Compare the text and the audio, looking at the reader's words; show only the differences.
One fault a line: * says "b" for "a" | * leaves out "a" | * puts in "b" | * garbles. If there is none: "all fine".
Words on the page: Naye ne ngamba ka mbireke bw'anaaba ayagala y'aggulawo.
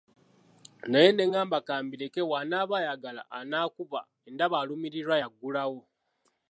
* puts in "anaakuba ndaba alumirirwa"